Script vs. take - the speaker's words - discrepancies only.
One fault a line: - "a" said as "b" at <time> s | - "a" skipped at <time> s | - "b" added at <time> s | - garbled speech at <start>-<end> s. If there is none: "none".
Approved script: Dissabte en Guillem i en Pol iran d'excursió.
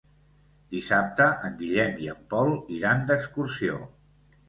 none